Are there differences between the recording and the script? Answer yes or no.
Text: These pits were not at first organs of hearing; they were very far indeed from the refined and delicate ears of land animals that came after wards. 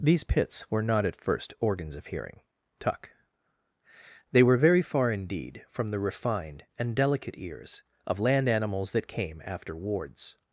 yes